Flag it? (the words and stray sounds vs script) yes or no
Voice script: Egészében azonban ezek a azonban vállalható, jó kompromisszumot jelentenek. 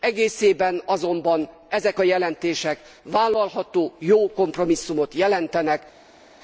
yes